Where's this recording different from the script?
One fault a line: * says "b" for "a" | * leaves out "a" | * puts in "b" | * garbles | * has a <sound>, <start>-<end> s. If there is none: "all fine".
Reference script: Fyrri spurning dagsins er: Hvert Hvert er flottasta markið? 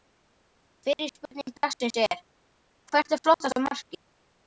* leaves out "Hvert"